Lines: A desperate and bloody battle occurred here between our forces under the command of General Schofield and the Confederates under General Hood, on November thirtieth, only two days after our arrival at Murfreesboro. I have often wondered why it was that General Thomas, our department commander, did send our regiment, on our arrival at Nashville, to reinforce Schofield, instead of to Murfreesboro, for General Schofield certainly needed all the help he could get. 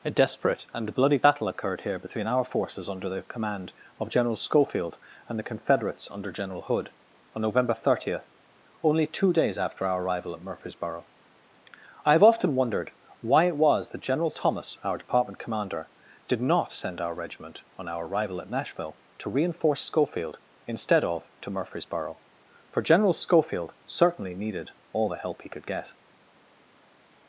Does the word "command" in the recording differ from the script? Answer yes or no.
no